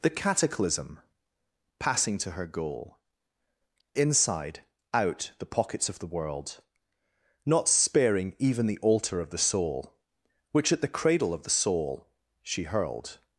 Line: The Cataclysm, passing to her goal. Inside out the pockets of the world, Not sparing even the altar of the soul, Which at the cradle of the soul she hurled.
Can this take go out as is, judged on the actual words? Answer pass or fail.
pass